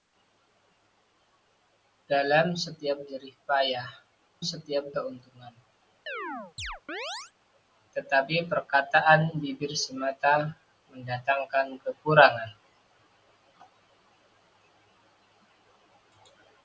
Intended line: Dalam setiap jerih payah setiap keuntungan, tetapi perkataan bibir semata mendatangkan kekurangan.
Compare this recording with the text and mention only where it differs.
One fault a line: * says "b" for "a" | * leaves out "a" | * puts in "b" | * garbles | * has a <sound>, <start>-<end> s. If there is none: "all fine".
* has a chirp, 6.1-7.3 s